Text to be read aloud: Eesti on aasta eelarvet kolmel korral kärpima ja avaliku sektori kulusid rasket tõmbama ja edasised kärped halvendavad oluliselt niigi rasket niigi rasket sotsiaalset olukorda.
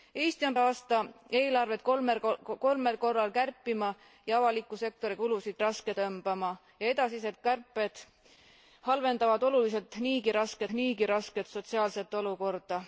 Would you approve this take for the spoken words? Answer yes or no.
yes